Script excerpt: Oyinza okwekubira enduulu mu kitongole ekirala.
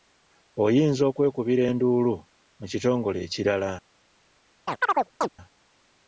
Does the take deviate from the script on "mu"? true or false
false